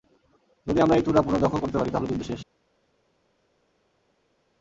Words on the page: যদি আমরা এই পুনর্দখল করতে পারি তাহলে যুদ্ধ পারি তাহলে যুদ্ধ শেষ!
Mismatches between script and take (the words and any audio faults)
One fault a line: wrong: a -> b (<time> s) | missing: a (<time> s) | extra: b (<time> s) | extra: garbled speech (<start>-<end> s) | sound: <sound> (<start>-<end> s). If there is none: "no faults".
extra: চূড়া (1.1 s)
missing: পারি তাহলে যুদ্ধ (2.2 s)